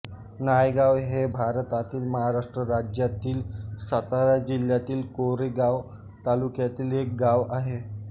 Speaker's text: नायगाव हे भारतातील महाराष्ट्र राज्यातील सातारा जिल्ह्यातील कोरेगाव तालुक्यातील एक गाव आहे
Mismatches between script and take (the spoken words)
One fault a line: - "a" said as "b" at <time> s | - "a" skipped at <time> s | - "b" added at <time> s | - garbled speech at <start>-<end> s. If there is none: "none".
none